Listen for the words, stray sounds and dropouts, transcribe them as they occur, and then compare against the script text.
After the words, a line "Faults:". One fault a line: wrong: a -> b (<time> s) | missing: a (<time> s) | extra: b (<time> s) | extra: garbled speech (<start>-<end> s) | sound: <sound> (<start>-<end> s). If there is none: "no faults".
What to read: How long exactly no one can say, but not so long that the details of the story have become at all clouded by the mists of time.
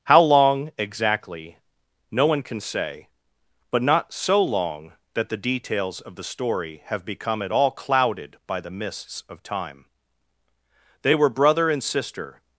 How long exactly no one can say, but not so long that the details of the story have become at all clouded by the mists of time. They were brother and sister
Faults:
extra: They were brother and sister (11.0 s)